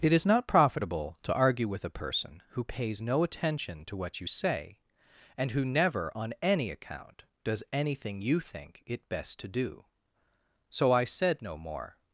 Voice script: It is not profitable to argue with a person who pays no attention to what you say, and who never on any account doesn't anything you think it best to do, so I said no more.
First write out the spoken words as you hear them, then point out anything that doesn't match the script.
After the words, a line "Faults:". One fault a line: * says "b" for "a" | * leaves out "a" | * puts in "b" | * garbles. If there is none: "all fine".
It is not profitable to argue with a person who pays no attention to what you say, and who never on any account does anything you think it best to do, so I said no more.
Faults:
* says "does" for "doesn't"